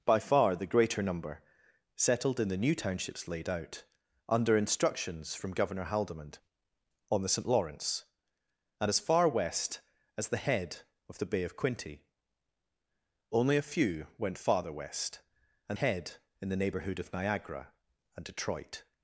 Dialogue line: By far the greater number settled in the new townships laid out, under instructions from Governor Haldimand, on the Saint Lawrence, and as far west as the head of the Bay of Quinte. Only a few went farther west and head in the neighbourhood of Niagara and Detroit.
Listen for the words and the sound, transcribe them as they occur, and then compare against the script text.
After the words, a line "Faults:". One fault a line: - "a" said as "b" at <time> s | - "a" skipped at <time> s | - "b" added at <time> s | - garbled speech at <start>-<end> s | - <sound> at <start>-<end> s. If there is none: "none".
By far the greater number settled in the new townships laid out, under instructions from Governor Haldimand, on the Saint Lawrence, and as far west as the head of the Bay of Quinte. Only a few went farther west and head in the neighbourhood of Niagara and Detroit.
Faults:
none